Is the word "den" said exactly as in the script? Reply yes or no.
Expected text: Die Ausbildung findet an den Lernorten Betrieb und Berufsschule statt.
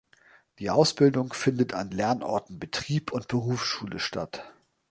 no